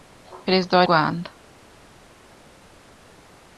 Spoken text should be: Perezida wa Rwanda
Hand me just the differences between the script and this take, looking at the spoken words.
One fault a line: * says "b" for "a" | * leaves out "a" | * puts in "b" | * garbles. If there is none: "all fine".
all fine